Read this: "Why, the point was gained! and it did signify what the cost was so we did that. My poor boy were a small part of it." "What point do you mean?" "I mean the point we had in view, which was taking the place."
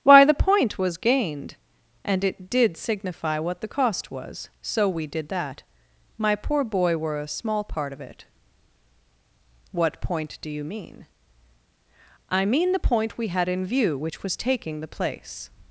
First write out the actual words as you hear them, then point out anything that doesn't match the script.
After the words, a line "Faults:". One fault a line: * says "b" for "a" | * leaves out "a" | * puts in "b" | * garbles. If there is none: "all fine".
"Why, the point was gained! and it did signify what the cost was so we did that. My poor boy were a small part of it." "What point do you mean?" "I mean the point we had in view, which was taking the place."
Faults:
all fine